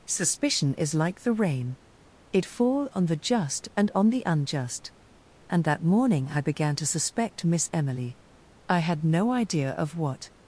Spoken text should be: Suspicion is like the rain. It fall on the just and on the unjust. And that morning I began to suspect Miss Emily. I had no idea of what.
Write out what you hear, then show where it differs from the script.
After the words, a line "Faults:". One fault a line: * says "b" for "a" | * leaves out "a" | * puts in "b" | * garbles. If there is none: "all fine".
Suspicion is like the rain. It fall on the just and on the unjust. And that morning I began to suspect Miss Emily. I had no idea of what.
Faults:
all fine